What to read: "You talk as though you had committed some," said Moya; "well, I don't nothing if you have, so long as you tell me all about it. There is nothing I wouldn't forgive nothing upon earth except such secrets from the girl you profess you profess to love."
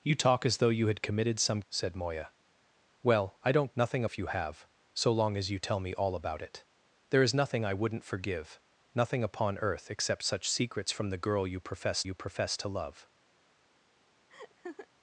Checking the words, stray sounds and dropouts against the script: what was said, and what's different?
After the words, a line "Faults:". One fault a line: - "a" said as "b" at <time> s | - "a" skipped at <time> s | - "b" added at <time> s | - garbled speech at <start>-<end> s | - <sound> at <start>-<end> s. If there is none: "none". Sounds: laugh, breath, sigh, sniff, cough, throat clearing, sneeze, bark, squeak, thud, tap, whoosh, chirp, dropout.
"You talk as though you had committed some," said Moya; "well, I don't nothing if you have, so long as you tell me all about it. There is nothing I wouldn't forgive nothing upon earth except such secrets from the girl you profess you profess to love."
Faults:
- laugh at 14.3-14.9 s